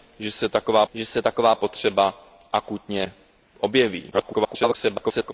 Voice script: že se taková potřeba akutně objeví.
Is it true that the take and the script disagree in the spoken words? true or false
true